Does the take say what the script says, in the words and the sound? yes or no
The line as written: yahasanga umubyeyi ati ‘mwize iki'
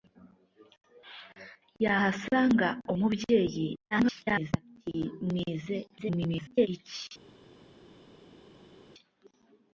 no